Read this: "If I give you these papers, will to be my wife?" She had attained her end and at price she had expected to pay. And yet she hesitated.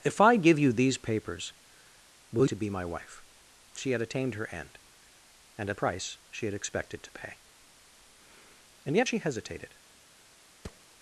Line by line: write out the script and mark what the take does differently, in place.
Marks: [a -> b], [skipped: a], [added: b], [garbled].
"If I give you these papers, will to be my wife?" She had attained her end and at price she had expected to pay. And yet she hesitated.